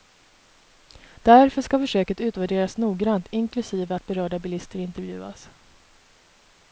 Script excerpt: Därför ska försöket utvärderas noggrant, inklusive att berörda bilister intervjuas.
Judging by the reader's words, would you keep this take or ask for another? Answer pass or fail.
pass